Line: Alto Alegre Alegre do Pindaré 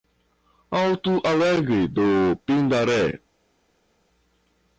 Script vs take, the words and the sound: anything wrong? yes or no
yes